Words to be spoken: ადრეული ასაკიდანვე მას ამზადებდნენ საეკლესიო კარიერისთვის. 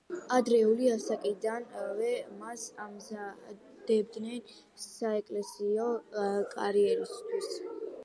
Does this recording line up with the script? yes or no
yes